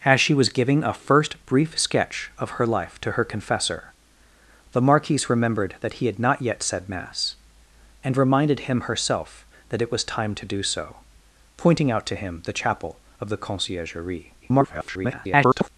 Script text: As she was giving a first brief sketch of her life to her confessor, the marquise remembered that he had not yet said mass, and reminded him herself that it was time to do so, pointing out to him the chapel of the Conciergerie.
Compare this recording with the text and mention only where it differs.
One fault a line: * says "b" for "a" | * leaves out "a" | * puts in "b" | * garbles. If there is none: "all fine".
* garbles